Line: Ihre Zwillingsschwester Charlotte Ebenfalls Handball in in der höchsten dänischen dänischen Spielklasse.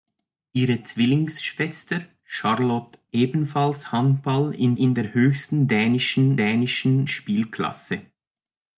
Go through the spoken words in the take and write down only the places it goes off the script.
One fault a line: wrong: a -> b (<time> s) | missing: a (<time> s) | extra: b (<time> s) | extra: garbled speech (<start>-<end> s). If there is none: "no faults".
no faults